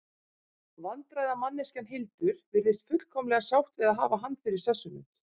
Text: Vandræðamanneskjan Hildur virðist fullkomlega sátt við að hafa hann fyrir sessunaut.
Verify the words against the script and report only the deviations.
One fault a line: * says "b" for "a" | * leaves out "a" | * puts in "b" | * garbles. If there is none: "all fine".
all fine